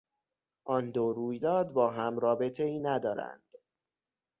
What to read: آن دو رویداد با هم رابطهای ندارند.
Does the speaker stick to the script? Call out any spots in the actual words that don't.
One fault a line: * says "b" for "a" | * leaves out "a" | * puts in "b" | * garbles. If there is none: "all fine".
all fine